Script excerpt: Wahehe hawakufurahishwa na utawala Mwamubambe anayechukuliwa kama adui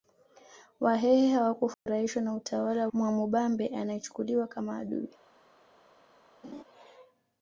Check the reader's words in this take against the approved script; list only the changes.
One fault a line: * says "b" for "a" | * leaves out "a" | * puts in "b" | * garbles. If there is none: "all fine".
all fine